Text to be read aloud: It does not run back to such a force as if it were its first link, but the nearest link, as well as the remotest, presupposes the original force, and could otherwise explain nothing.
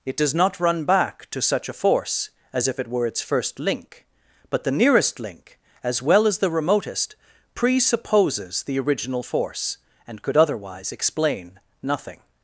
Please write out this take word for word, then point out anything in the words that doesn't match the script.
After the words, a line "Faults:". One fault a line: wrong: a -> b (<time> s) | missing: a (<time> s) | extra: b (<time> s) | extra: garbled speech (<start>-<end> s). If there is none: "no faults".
It does not run back to such a force as if it were its first link, but the nearest link, as well as the remotest, presupposes the original force, and could otherwise explain nothing.
Faults:
no faults